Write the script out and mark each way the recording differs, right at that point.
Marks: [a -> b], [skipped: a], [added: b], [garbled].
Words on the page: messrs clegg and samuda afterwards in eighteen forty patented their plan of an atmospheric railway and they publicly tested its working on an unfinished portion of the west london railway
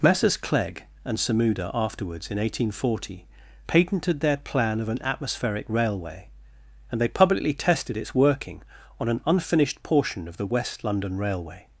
messrs clegg and samuda afterwards in eighteen forty patented their plan of an atmospheric railway and they publicly tested its working on an unfinished portion of the west london railway